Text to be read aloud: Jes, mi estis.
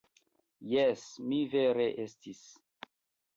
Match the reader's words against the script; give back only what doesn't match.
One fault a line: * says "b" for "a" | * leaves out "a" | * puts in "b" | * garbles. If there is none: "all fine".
* puts in "vere"